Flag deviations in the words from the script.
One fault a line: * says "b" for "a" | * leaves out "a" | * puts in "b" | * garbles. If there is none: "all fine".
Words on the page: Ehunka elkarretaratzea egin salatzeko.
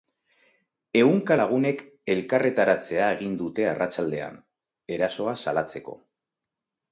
* puts in "lagunek"
* puts in "dute arratsaldean erasoa"